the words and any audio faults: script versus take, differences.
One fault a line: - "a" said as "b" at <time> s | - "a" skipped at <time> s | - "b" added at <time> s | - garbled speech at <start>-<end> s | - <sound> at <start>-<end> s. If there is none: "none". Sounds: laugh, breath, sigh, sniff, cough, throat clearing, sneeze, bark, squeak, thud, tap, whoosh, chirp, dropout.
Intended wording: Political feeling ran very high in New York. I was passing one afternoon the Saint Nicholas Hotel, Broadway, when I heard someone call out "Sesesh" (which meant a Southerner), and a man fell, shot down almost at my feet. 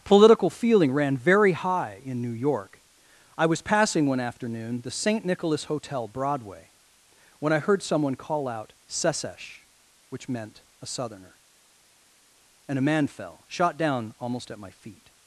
none